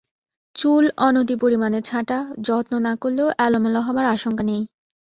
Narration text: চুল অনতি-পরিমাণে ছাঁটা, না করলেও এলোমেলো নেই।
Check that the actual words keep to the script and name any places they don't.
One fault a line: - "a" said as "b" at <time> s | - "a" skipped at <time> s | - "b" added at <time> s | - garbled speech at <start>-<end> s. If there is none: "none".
- "যত্ন" added at 2.4 s
- "হবার আশঙ্কা" added at 3.8 s